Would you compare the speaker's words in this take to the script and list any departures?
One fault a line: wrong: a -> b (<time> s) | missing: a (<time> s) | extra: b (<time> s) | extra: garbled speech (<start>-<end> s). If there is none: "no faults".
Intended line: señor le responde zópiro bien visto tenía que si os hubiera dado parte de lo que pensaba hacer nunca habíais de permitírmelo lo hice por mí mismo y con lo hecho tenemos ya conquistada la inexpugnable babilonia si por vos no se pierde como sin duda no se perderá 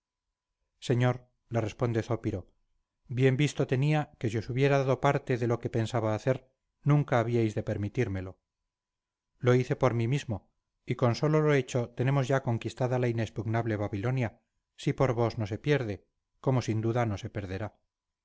extra: solo (11.2 s)